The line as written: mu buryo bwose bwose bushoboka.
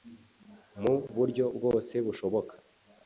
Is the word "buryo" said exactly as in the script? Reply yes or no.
yes